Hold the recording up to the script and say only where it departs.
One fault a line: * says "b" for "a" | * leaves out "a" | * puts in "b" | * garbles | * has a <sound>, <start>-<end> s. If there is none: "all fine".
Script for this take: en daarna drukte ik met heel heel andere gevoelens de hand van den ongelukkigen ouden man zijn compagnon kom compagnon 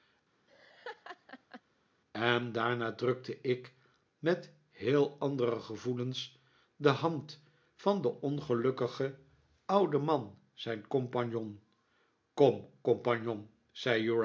* has a laugh, 0.5-1.6 s
* leaves out "heel"